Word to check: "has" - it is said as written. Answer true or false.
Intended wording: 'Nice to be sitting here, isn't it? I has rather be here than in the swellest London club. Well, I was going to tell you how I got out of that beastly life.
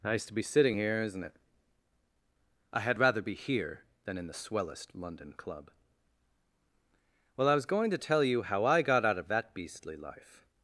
false